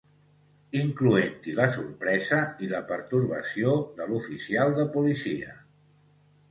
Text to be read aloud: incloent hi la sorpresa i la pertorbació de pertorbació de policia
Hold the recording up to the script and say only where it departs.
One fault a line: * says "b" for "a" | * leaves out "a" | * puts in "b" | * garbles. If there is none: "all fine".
* says "l'oficial" for "pertorbació"